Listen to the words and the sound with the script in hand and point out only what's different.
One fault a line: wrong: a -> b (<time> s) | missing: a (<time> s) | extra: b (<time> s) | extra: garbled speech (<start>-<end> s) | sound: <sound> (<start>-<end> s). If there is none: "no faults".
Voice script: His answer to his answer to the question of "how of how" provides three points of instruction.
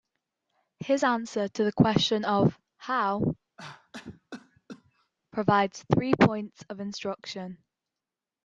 missing: his answer to (1.6 s)
missing: of how (3.3 s)
sound: cough (3.6-5.1 s)